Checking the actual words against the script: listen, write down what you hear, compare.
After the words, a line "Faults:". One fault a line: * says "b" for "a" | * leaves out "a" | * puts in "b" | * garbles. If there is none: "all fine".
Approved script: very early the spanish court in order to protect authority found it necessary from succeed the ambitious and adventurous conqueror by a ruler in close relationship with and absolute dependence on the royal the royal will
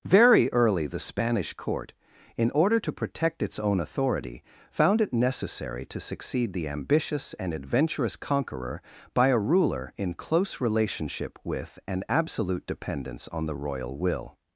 very early the spanish court in order to protect its own authority found it necessary to succeed the ambitious and adventurous conqueror by a ruler in close relationship with and absolute dependence on the royal will
Faults:
* puts in "its own"
* says "to" for "from"
* leaves out "the royal"